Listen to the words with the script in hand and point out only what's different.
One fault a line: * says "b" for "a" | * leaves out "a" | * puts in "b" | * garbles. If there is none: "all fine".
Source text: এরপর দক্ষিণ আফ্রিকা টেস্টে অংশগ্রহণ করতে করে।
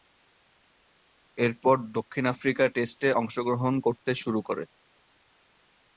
* puts in "শুরু"